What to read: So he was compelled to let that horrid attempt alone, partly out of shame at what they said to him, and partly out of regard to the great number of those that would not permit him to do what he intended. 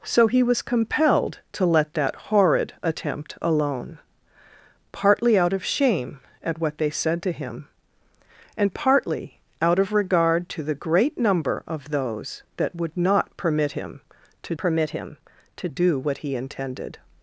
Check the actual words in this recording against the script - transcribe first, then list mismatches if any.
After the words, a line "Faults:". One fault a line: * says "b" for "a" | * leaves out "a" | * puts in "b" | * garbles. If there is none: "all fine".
So he was compelled to let that horrid attempt alone, partly out of shame at what they said to him, and partly out of regard to the great number of those that would not permit him to permit him to do what he intended.
Faults:
* puts in "permit him to"